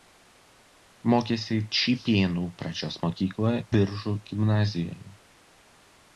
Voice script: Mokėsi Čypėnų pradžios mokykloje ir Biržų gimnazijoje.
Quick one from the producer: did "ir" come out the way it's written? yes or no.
no